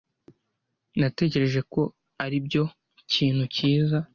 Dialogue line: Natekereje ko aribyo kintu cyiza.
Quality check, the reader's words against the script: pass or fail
pass